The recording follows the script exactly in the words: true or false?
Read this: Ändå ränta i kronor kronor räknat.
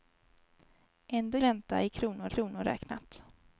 true